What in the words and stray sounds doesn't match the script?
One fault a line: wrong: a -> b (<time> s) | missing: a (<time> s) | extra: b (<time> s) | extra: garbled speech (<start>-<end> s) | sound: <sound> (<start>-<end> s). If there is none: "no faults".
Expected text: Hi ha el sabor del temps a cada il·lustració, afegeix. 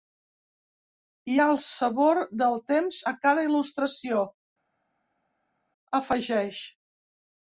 no faults